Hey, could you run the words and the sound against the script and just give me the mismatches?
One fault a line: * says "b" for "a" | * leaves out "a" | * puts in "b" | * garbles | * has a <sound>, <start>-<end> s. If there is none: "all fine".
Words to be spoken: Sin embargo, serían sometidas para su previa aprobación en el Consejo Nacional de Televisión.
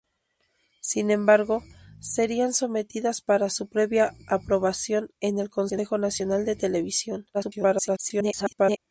* garbles